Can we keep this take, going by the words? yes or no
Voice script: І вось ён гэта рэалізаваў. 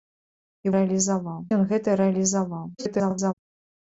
no